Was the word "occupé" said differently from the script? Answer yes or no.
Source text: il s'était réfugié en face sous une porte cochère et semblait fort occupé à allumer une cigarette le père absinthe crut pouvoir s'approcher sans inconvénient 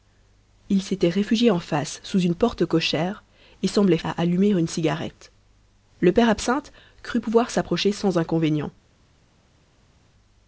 yes